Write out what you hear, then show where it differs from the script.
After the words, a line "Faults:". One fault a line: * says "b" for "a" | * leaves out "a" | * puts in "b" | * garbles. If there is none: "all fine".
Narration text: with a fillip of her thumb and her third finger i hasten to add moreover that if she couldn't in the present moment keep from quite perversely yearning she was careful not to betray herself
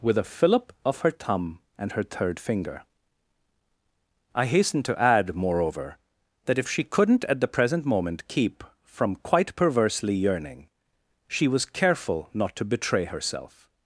with a fillip of her thumb and her third finger i hasten to add moreover that if she couldn't at the present moment keep from quite perversely yearning she was careful not to betray herself
Faults:
* says "at" for "in"